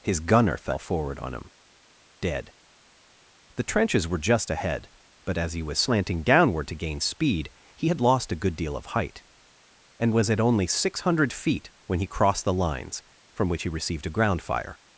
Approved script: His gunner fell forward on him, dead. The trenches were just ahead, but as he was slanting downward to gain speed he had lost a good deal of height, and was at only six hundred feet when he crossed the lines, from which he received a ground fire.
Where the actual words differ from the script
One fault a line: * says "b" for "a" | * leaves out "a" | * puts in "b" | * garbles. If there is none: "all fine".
all fine